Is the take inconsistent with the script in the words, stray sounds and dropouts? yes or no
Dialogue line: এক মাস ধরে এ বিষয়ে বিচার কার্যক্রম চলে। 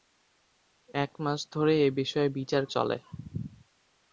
yes